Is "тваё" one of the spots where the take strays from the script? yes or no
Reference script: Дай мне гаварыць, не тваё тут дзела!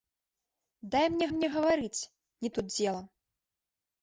yes